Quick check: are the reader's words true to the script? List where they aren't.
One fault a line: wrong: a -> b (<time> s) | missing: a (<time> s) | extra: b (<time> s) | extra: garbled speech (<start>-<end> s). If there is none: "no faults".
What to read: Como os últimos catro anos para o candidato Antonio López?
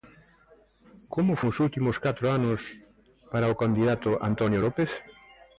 no faults